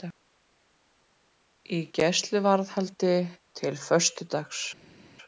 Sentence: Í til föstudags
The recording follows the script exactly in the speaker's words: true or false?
false